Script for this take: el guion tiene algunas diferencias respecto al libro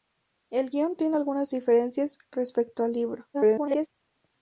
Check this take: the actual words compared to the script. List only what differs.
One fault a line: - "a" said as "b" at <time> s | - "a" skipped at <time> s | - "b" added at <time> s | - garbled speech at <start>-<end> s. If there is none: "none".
- garbled speech at 3.3-3.9 s